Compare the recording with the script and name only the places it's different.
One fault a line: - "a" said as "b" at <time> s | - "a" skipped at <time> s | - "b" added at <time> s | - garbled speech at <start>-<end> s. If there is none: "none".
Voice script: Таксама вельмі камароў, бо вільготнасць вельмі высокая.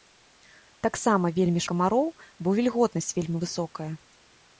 none